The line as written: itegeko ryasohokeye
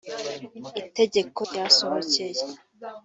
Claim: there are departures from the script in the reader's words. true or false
false